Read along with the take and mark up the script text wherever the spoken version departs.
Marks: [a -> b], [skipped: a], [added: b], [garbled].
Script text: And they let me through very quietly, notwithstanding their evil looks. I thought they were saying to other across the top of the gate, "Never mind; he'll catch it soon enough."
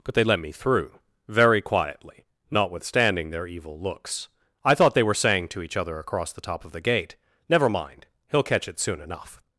[And -> But] they let me through very quietly, notwithstanding their evil looks. I thought they were saying to [added: each] other across the top of the gate, "Never mind; he'll catch it soon enough."